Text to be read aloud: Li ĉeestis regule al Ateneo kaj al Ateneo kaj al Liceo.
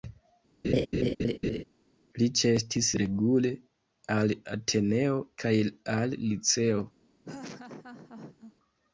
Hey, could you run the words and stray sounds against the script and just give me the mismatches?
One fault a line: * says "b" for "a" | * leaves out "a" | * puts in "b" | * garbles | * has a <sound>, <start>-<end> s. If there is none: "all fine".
* has a laugh, 0.6-1.6 s
* leaves out "Ateneo kaj al"
* has a laugh, 7.2-8.5 s